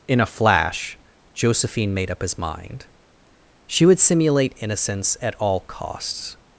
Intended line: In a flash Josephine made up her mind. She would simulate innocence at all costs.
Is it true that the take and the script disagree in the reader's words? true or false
true